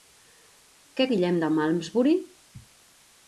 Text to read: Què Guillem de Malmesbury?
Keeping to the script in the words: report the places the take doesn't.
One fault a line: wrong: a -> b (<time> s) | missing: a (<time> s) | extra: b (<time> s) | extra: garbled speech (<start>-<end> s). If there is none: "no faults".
no faults